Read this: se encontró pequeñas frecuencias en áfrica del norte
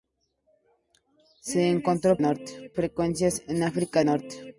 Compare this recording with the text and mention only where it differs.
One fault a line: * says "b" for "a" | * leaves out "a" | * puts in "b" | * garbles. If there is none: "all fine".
* says "norte" for "pequeñas"
* leaves out "del"